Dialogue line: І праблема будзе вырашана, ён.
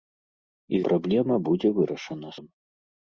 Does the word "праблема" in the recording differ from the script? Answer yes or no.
no